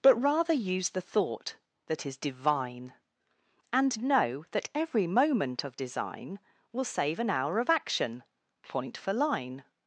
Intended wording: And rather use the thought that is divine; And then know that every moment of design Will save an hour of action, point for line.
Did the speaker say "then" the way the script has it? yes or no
no